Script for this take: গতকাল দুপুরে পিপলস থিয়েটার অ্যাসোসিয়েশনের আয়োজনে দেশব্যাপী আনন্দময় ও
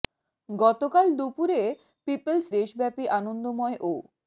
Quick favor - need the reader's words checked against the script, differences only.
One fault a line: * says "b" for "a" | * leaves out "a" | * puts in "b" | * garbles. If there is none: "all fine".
* leaves out "থিয়েটার অ্যাসোসিয়েশনের আয়োজনে"